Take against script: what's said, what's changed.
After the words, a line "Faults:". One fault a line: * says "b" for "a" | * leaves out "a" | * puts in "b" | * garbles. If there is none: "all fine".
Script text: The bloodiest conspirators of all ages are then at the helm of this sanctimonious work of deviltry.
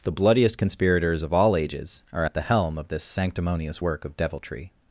The bloodiest conspirators of all ages are at the helm of this sanctimonious work of deviltry.
Faults:
* leaves out "then"